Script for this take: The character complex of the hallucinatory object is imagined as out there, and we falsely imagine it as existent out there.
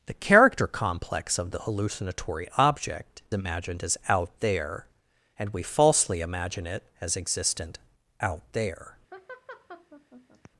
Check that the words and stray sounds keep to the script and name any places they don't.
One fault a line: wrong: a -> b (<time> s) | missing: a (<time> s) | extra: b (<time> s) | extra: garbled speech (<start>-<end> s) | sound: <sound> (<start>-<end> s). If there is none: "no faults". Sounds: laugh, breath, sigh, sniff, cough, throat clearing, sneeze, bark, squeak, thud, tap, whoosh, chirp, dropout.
missing: is (3.2 s)
sound: laugh (9.1-10.5 s)